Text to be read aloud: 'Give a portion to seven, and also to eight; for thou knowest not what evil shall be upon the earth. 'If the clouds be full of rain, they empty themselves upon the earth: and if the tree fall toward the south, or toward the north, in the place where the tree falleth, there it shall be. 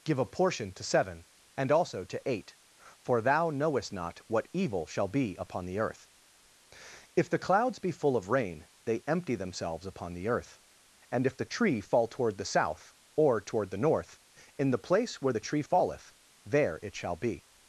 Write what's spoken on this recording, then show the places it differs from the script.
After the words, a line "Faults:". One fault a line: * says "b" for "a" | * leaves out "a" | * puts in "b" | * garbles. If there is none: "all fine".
'Give a portion to seven, and also to eight; for thou knowest not what evil shall be upon the earth. 'If the clouds be full of rain, they empty themselves upon the earth: and if the tree fall toward the south, or toward the north, in the place where the tree falleth, there it shall be.
Faults:
all fine